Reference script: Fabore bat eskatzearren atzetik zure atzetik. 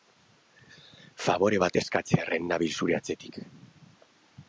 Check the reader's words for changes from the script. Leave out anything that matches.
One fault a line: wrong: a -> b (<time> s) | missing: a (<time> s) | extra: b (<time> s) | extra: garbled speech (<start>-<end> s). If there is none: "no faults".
wrong: atzetik -> nabil (2.5 s)